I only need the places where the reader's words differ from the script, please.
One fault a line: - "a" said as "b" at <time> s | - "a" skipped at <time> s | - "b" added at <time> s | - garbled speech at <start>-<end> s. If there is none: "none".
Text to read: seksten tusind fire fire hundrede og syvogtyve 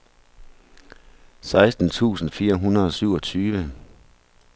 - "fire" skipped at 2.5 s